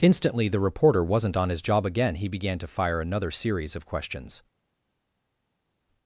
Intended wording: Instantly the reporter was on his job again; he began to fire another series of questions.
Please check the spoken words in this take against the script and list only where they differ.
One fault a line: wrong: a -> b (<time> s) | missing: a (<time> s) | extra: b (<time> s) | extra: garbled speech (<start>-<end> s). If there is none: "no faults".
wrong: was -> wasn't (1.0 s)